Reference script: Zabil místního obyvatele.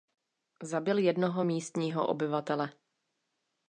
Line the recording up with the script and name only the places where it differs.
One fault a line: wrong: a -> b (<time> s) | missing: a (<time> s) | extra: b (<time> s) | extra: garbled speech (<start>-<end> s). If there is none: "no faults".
extra: jednoho (1.0 s)